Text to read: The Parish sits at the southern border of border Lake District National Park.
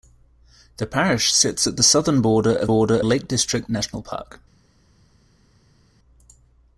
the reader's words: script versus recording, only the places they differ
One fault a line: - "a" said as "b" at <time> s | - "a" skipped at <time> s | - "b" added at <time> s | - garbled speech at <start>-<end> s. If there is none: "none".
none